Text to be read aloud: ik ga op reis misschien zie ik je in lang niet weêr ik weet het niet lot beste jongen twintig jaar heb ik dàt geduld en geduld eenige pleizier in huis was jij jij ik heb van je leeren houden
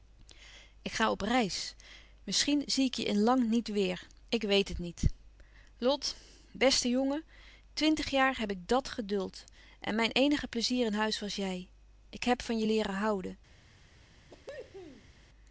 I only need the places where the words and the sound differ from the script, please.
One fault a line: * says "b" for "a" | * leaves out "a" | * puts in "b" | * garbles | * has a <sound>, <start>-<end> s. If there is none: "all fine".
* says "mijn" for "geduld"
* leaves out "jij"
* has a cough, 14.3-15.1 s